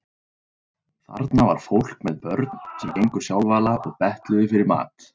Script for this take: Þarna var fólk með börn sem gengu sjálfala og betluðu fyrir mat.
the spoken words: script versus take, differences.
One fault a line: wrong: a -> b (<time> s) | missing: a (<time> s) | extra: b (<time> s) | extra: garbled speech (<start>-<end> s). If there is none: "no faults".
no faults